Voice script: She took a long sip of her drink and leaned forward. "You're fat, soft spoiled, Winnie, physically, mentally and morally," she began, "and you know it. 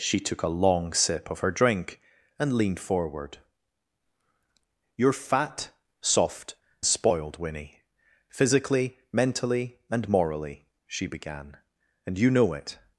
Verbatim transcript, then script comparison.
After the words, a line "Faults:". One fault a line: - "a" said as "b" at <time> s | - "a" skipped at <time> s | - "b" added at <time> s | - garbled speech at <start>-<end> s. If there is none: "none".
She took a long sip of her drink and leaned forward. "You're fat, soft spoiled, Winnie, physically, mentally and morally," she began, "and you know it.
Faults:
none